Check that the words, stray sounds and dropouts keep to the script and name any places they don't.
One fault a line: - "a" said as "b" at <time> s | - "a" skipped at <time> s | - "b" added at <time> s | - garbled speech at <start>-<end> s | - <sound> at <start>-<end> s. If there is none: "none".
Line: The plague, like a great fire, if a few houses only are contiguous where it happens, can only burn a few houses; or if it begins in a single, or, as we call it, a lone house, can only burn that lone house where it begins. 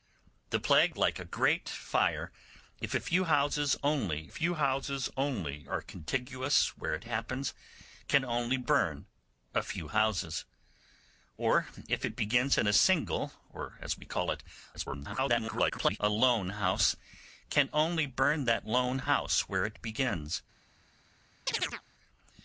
- "few houses only" added at 4.3 s
- garbled speech at 14.7-16.0 s
- chirp at 21.5-21.8 s